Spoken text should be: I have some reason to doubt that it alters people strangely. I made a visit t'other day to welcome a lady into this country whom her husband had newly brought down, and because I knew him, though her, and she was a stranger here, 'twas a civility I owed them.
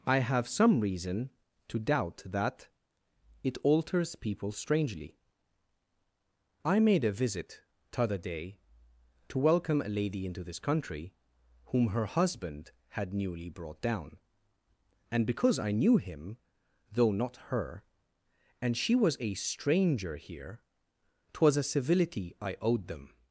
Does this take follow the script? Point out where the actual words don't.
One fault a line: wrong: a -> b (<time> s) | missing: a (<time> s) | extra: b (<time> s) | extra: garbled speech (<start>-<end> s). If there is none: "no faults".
extra: not (17.1 s)